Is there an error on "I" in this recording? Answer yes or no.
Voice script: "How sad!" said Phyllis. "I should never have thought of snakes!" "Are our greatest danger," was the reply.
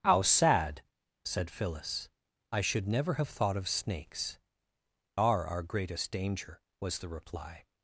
no